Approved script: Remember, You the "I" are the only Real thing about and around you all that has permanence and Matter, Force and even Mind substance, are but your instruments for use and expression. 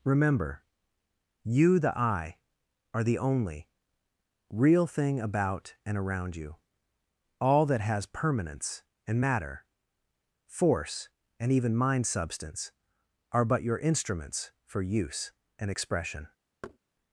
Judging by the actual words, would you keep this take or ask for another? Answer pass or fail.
pass